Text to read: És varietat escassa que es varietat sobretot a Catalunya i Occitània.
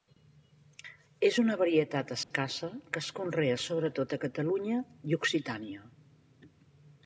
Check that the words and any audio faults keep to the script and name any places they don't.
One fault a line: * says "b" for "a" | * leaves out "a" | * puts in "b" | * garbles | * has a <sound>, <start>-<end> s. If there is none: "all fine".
* puts in "una"
* has a dropout, 2.2-2.3 s
* says "conrea" for "varietat"